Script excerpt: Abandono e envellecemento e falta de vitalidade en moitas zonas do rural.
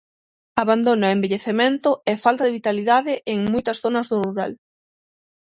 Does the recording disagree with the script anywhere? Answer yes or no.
no